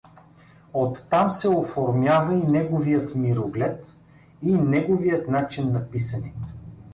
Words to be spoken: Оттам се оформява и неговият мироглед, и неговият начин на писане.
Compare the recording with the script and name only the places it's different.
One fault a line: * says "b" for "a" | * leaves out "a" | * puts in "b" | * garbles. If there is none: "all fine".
all fine